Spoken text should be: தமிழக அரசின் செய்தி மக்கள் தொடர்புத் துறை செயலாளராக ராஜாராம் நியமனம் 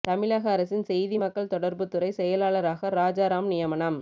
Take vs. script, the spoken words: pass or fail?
pass